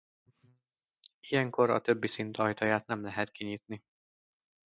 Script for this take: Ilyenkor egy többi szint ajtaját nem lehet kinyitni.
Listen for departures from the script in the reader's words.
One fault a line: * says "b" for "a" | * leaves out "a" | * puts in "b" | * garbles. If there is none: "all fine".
* says "a" for "egy"